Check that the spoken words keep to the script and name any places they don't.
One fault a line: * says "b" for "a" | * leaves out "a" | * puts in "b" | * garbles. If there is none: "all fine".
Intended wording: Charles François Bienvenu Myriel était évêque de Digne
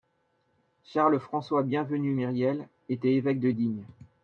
all fine